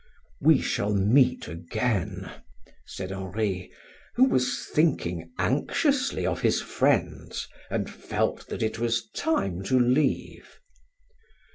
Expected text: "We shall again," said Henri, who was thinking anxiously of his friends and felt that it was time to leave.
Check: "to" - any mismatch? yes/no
no